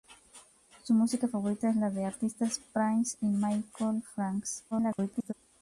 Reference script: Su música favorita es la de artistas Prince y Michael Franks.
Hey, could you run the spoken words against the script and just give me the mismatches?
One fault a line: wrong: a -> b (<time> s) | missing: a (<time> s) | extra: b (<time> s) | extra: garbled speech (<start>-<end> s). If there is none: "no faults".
extra: garbled speech (4.7-5.3 s)